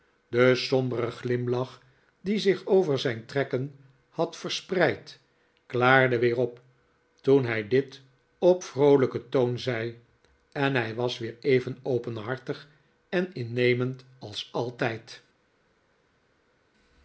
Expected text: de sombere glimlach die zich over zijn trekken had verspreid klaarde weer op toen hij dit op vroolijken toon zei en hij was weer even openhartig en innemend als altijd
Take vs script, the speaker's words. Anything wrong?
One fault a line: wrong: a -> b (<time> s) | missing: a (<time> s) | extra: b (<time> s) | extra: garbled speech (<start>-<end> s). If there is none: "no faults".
no faults